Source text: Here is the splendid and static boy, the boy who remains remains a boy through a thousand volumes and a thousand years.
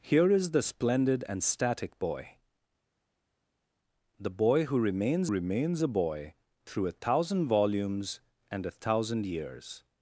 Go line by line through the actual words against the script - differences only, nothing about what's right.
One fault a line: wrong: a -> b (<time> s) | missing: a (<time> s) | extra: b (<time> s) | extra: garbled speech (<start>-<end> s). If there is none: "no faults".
no faults